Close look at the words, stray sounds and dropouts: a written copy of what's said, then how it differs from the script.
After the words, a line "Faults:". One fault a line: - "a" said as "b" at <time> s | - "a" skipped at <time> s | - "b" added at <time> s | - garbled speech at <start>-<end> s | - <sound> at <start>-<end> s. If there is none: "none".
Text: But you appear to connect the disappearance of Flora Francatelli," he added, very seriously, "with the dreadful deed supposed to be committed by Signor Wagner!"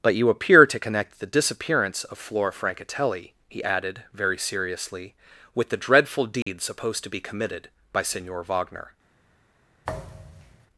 But you appear to connect the disappearance of Flora Francatelli," he added, very seriously, "with the dreadful deed supposed to be committed by Signor Wagner!"
Faults:
- dropout at 6.4-6.5 s
- thud at 9.8-10.7 s